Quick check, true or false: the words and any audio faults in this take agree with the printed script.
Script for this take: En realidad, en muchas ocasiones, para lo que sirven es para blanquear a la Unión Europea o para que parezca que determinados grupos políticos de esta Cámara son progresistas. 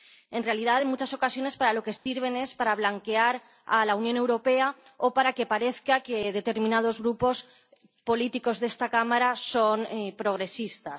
false